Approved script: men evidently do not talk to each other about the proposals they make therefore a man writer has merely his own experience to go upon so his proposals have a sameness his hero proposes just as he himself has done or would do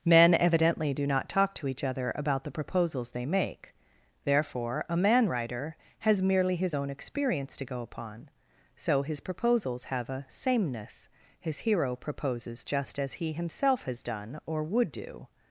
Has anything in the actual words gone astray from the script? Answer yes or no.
no